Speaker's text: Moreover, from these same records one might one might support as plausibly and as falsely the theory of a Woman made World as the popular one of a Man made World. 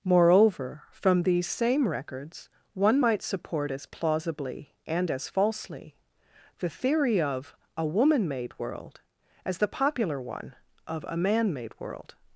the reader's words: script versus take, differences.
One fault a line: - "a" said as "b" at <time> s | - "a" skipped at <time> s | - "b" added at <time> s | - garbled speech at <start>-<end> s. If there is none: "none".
- "one might" skipped at 3.2 s